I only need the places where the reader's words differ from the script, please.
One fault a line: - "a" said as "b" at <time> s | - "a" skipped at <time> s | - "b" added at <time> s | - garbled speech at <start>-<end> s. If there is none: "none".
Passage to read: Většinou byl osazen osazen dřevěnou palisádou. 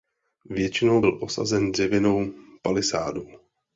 - "osazen" skipped at 1.7 s